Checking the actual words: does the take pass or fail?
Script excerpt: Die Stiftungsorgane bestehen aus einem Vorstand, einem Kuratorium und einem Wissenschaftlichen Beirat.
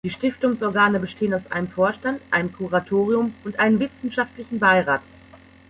pass